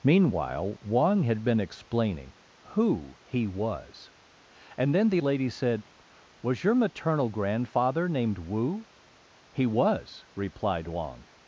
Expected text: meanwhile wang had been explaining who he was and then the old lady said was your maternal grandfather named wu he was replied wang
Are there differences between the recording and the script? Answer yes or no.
yes